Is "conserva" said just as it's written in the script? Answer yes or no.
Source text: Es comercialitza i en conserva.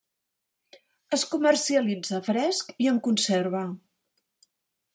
yes